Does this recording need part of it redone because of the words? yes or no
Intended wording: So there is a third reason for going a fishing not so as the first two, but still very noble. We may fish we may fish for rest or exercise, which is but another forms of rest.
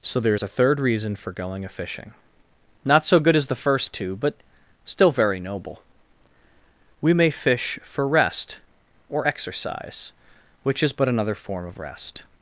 yes